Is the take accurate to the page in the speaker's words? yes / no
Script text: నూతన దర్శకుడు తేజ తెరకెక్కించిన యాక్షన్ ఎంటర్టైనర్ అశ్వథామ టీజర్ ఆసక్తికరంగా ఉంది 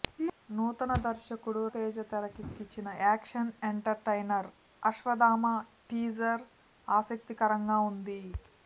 yes